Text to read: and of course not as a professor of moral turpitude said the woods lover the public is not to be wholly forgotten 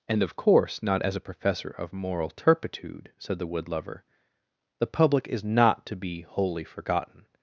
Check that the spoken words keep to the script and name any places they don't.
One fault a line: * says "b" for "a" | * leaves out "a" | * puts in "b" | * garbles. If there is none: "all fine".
* says "wood" for "woods"